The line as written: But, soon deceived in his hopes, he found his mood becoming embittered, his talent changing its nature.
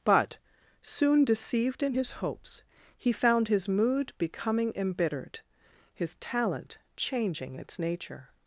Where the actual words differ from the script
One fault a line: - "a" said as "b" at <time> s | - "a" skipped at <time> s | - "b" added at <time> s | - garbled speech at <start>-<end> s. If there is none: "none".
none